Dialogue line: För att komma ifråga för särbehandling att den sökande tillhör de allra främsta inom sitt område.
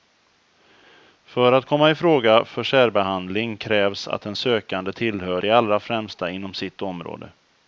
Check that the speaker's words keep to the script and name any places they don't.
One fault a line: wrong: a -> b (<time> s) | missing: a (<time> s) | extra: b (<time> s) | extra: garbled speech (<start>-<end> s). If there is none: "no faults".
extra: krävs (3.6 s)